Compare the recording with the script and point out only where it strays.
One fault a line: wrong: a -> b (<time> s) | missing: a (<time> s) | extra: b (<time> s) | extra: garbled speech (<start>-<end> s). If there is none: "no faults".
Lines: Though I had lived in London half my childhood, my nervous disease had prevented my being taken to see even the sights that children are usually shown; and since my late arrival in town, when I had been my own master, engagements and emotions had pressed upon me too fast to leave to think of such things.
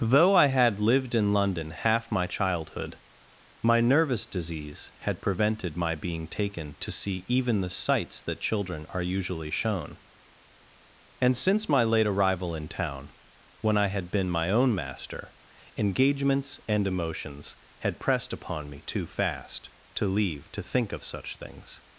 no faults